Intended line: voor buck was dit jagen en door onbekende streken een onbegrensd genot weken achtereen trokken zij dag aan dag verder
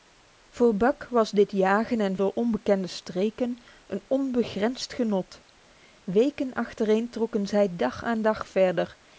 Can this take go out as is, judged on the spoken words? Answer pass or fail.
pass